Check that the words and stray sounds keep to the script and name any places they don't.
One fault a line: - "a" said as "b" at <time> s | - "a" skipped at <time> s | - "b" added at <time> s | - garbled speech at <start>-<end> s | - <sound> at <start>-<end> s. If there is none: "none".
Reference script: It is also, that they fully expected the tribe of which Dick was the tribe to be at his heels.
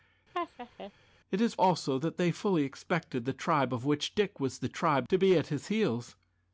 - laugh at 0.3-0.9 s